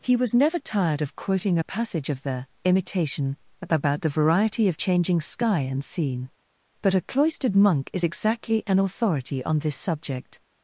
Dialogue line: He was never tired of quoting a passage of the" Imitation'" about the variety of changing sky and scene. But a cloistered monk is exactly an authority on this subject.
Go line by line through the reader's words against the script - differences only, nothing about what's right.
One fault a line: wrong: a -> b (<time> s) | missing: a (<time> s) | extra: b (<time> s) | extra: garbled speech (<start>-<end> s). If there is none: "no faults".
no faults